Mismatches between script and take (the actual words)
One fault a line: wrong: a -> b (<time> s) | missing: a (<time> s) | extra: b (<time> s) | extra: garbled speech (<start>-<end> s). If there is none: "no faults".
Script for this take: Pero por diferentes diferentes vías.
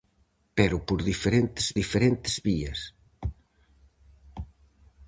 no faults